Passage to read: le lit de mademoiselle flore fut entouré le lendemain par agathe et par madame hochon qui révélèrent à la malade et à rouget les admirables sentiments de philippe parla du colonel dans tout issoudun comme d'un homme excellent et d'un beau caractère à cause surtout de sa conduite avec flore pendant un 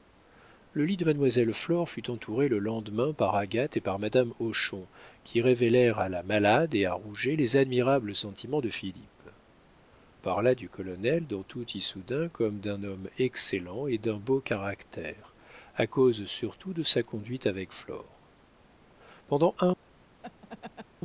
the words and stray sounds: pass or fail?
fail